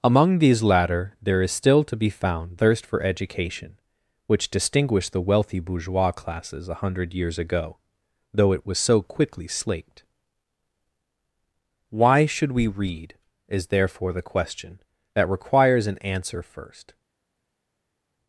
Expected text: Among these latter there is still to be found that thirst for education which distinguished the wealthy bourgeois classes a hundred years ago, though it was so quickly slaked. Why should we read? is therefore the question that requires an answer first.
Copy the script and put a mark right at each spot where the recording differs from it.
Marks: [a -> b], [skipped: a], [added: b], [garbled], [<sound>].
Among these latter there is still to be found [skipped: that] thirst for education which distinguished the wealthy bourgeois classes a hundred years ago, though it was so quickly slaked. Why should we read? is therefore the question that requires an answer first.